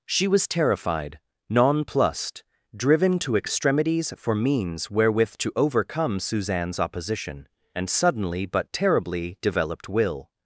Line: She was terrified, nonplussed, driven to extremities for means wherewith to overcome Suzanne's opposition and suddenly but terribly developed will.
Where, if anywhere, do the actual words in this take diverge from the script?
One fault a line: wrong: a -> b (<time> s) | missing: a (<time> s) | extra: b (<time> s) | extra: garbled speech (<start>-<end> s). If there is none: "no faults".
no faults